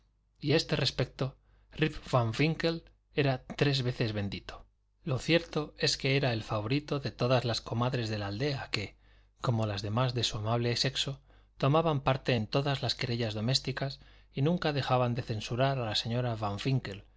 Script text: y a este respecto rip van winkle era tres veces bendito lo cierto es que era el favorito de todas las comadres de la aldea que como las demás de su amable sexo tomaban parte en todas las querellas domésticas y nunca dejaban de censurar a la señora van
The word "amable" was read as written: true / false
true